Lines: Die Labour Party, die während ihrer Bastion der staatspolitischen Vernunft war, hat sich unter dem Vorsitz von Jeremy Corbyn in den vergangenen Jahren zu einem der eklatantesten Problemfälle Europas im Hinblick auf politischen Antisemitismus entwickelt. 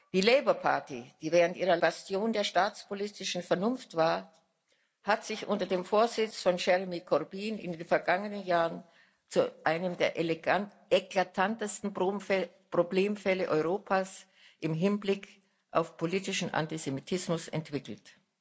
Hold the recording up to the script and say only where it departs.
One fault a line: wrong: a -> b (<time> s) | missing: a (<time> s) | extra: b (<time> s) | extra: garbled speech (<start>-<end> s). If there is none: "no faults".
no faults